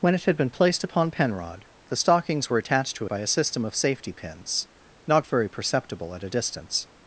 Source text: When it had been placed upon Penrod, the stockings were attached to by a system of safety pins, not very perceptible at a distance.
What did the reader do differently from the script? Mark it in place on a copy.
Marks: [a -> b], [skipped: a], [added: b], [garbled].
When it had been placed upon Penrod, the stockings were attached to by a system of safety pins, not very perceptible at a distance.